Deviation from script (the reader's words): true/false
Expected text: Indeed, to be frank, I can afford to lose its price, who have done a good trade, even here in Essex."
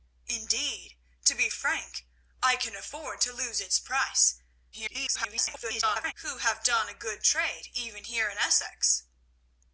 true